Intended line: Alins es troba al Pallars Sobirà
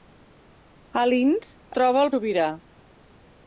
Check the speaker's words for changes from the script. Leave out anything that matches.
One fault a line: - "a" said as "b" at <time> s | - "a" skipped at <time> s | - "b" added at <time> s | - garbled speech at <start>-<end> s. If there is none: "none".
- "es" skipped at 1.5 s
- "Pallars" skipped at 2.1 s